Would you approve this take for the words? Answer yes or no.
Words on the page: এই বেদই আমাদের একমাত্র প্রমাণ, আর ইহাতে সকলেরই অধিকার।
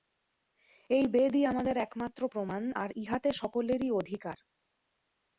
yes